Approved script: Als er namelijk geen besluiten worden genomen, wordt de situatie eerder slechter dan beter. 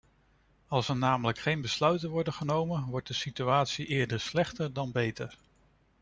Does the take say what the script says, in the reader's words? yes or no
yes